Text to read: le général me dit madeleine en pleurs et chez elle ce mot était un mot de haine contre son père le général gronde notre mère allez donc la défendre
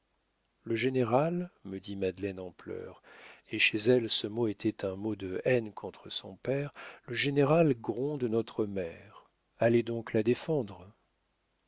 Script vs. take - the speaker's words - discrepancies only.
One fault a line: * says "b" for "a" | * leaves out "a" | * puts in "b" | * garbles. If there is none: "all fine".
all fine